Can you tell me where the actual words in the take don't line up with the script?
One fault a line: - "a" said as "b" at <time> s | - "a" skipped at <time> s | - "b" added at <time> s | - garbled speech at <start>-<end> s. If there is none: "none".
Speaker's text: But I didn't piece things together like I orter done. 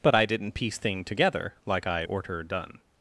- "things" said as "thing" at 0.8 s